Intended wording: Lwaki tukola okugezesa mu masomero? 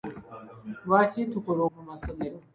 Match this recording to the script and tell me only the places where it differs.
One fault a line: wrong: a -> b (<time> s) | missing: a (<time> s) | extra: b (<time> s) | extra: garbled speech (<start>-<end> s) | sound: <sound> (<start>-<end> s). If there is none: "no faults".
missing: okugezesa (1.6 s)